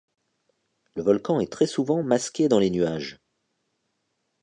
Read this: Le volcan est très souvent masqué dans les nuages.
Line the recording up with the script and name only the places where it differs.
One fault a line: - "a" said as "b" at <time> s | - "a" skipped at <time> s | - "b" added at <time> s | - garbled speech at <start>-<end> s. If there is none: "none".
none